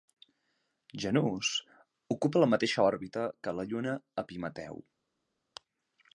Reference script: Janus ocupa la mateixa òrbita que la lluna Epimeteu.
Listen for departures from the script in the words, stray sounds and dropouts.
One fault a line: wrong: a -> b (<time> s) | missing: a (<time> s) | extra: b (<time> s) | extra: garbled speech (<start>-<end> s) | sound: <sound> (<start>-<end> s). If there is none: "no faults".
no faults